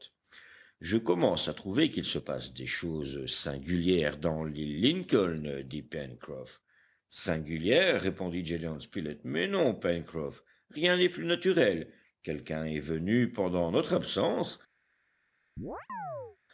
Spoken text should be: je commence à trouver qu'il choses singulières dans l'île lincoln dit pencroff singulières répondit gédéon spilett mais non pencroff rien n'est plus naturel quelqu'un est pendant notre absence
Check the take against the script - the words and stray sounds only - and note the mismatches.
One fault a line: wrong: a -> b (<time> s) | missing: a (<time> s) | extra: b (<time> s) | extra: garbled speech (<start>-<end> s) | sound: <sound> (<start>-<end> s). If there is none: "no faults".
extra: se passe des (2.0 s)
extra: venu (12.8 s)
sound: chirp (15.6-16.4 s)